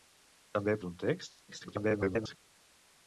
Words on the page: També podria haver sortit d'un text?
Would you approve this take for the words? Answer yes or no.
no